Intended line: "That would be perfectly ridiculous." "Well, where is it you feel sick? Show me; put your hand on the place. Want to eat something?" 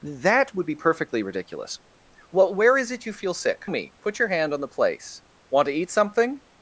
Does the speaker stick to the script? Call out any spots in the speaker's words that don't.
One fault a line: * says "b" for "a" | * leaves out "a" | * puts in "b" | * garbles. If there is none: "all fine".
* leaves out "Show"